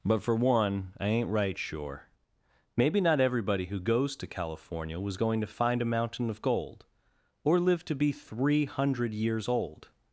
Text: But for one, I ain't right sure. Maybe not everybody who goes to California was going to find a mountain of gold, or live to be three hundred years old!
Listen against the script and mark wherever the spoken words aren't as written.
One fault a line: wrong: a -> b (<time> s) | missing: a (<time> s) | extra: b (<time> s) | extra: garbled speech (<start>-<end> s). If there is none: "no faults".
no faults